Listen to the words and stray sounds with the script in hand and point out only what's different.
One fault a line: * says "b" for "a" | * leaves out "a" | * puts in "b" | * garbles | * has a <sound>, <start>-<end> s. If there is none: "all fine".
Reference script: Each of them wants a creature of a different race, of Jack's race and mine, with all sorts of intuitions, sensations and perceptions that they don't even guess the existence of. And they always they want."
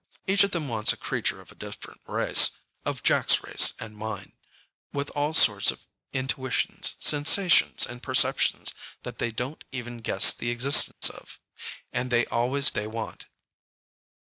* has a dropout, 10.9-11.0 s